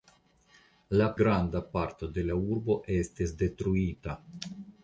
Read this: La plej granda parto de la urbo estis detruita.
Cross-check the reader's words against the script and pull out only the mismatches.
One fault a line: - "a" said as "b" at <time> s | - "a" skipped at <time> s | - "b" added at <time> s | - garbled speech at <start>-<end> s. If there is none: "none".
- "plej" skipped at 1.1 s